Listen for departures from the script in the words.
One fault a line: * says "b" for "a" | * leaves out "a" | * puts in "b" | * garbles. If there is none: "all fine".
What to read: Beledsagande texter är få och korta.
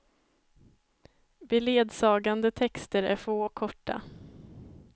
all fine